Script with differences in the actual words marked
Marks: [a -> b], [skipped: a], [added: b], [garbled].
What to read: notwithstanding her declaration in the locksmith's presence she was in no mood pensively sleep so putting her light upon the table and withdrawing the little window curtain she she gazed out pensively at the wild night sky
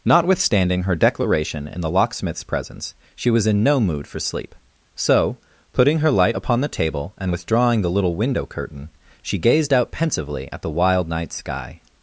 notwithstanding her declaration in the locksmith's presence she was in no mood [pensively -> for] sleep so putting her light upon the table and withdrawing the little window curtain she [skipped: she] gazed out pensively at the wild night sky